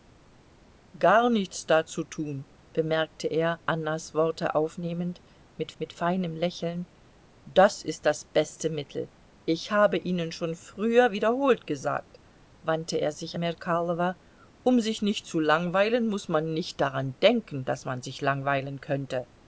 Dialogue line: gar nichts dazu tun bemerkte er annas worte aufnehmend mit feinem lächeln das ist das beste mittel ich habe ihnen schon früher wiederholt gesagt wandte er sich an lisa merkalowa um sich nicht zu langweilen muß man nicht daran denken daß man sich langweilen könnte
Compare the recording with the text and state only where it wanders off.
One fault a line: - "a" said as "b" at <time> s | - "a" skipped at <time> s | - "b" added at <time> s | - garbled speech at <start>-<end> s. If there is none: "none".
- "mit" added at 5.8 s
- "an lisa" skipped at 13.4 s